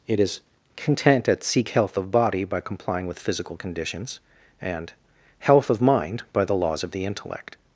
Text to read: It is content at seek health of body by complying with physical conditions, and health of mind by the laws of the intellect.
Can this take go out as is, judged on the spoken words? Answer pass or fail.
pass